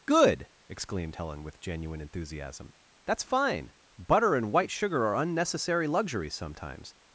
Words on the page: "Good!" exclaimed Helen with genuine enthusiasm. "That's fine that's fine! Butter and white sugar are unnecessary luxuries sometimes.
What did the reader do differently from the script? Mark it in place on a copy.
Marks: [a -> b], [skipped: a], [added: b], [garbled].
"Good!" exclaimed Helen with genuine enthusiasm. "That's fine [skipped: that's fine!] Butter and white sugar are unnecessary luxuries sometimes.